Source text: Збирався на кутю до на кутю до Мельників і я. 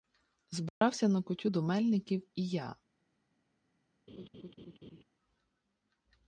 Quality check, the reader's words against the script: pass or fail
fail